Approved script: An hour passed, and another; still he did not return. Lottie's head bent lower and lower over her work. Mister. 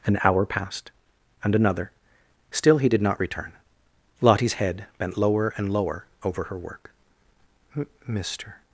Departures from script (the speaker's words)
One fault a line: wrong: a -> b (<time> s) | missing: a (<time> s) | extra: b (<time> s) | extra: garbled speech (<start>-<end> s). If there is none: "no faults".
no faults